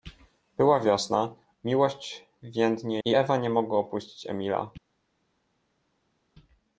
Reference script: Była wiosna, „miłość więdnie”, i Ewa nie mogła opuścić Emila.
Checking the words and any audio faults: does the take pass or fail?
pass